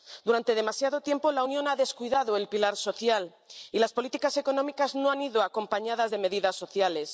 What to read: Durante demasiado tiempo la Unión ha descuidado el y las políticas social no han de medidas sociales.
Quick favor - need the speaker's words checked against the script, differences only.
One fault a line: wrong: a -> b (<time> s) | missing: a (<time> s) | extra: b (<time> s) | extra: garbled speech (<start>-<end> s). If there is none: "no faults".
extra: pilar social (2.5 s)
wrong: social -> económicas (4.4 s)
extra: ido acompañadas (5.2 s)